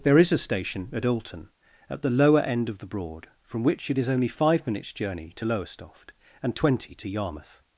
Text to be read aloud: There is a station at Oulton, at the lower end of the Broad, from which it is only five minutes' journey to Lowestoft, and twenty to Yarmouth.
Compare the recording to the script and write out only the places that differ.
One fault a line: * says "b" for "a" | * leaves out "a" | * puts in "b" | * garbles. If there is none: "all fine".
all fine